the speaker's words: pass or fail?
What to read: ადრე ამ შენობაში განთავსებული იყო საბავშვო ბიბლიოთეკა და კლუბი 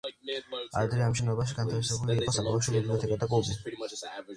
pass